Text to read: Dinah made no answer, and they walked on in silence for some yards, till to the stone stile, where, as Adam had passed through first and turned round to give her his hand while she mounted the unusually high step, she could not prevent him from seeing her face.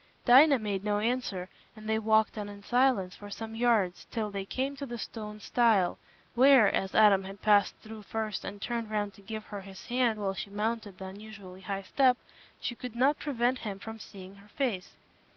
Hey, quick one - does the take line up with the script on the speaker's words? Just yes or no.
no